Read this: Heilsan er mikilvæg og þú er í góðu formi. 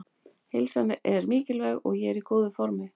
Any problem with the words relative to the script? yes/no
yes